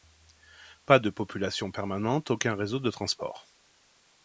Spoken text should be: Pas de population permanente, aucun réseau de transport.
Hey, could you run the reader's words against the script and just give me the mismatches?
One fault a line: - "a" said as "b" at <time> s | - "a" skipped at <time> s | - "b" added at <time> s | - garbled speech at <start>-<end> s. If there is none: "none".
none